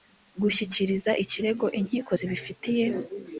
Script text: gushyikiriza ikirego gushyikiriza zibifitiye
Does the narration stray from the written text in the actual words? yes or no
yes